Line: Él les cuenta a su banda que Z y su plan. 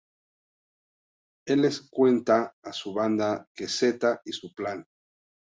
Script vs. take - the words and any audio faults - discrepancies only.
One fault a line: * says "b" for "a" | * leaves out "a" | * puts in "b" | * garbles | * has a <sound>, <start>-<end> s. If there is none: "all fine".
all fine